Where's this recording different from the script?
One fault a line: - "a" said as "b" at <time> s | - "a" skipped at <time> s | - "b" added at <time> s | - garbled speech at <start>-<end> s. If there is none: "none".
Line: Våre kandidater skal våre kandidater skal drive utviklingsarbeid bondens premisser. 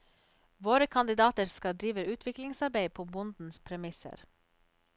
- "våre kandidater skal" skipped at 1.8 s
- "på" added at 2.9 s